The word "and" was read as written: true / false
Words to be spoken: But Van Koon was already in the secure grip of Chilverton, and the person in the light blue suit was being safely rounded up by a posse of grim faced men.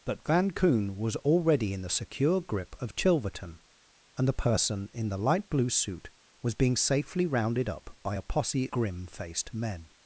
true